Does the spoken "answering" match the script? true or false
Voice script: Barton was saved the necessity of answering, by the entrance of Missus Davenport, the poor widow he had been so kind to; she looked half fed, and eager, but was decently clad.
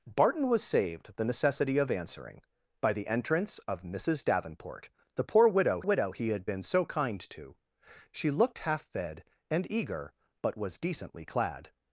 true